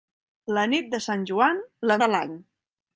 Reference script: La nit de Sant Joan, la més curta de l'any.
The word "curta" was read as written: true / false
false